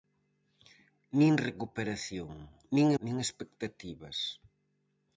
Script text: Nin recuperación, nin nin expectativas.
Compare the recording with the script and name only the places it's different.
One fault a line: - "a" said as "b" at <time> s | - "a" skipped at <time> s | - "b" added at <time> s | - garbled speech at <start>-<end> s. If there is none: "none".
none